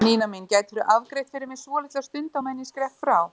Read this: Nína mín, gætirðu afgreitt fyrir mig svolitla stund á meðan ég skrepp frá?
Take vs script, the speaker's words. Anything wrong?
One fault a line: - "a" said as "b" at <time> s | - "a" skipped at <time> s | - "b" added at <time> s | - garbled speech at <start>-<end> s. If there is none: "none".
none